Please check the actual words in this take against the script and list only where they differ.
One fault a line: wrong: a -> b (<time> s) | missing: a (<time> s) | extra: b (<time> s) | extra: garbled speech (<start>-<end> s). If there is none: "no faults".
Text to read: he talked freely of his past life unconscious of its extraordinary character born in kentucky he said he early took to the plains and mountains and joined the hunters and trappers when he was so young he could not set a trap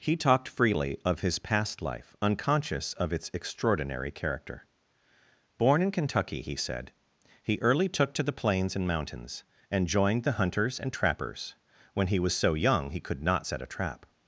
no faults